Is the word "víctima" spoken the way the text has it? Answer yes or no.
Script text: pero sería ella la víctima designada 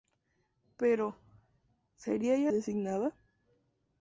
no